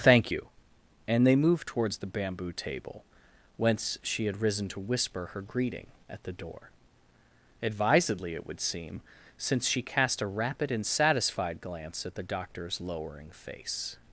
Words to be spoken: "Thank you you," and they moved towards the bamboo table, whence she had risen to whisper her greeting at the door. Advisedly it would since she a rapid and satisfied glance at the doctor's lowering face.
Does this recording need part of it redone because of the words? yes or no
yes